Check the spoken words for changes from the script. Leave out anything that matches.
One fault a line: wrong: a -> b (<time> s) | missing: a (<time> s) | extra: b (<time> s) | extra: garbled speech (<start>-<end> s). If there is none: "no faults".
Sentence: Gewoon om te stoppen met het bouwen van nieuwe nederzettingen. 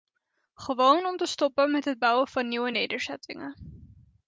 no faults